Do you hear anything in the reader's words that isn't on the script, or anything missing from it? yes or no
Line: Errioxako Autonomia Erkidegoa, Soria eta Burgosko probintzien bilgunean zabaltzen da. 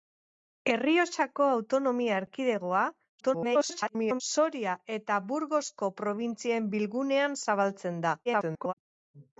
yes